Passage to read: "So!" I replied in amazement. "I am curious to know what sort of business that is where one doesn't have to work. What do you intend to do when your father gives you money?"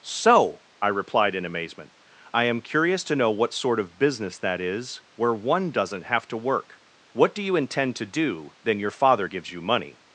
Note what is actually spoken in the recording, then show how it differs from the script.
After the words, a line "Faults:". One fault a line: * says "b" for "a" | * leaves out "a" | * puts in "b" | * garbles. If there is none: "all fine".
"So!" I replied in amazement. "I am curious to know what sort of business that is where one doesn't have to work. What do you intend to do then your father gives you money?"
Faults:
* says "then" for "when"